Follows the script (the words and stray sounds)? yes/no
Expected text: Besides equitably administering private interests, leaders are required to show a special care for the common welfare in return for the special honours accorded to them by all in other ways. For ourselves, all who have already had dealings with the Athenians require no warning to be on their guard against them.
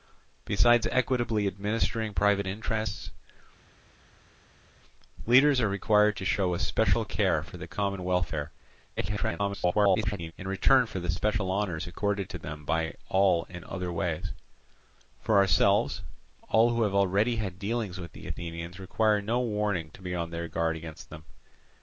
no